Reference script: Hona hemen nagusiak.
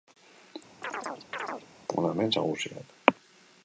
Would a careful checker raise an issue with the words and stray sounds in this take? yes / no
yes